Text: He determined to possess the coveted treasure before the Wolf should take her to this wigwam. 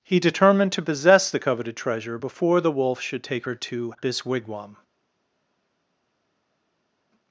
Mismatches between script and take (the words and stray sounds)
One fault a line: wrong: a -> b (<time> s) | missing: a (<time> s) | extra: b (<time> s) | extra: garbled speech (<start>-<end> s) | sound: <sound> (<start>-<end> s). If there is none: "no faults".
no faults